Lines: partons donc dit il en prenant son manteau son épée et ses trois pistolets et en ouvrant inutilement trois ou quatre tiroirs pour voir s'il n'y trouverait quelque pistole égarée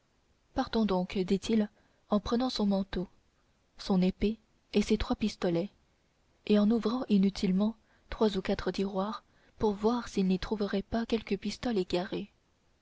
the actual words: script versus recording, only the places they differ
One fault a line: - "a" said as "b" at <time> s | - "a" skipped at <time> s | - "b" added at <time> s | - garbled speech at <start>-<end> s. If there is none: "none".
- "pas" added at 10.8 s